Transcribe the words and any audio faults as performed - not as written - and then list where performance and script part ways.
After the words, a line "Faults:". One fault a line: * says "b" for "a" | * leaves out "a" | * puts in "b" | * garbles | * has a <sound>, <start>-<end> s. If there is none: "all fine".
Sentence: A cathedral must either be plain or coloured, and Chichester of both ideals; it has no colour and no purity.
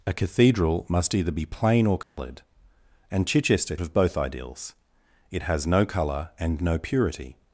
A cathedral must either be plain or coloured, and Chichester of both ideals; it has no colour and no purity.
Faults:
* has a dropout, 2.0-2.2 s